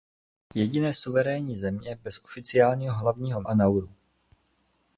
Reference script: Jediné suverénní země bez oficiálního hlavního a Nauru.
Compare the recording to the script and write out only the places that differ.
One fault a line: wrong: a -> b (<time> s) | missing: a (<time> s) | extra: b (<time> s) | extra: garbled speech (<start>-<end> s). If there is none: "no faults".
no faults